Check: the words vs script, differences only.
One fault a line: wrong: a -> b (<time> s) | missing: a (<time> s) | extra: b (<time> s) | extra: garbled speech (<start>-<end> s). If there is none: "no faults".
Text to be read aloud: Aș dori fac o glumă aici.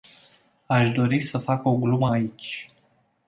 extra: să (1.2 s)